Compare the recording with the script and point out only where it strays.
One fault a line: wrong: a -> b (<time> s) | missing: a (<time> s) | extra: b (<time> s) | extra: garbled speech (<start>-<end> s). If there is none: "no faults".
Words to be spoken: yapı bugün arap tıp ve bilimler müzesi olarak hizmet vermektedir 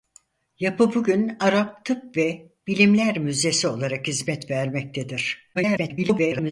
extra: garbled speech (5.5-6.5 s)